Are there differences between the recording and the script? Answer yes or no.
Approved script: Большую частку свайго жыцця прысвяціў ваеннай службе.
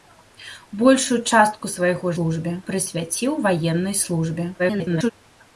yes